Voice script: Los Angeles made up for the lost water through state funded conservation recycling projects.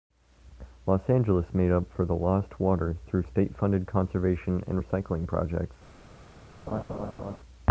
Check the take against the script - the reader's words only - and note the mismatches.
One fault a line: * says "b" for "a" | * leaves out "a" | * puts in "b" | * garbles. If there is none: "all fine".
* puts in "and"